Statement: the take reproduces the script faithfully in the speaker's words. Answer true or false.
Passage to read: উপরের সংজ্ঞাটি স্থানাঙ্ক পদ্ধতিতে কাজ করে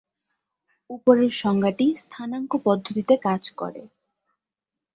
true